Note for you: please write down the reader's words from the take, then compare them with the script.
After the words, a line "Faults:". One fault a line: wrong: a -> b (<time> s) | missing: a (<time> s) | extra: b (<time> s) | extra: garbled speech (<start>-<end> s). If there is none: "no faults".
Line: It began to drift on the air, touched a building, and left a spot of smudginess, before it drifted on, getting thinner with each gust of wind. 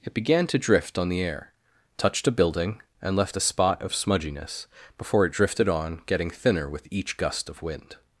It began to drift on the air, touched a building, and left a spot of smudginess, before it drifted on, getting thinner with each gust of wind.
Faults:
no faults